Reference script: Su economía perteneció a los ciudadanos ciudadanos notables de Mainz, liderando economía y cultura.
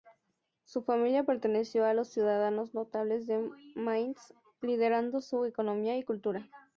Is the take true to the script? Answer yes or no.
no